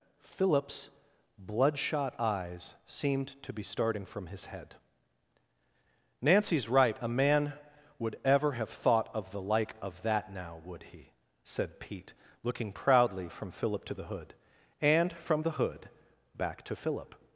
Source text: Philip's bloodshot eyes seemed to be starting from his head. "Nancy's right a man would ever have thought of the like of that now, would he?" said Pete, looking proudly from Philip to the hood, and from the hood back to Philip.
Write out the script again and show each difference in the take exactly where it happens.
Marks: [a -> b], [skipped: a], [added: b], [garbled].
Philip's bloodshot eyes seemed to be starting from his head. "Nancy's right a man would ever have thought of the like of that now, would he?" said Pete, looking proudly from Philip to the hood, and from the hood back to Philip.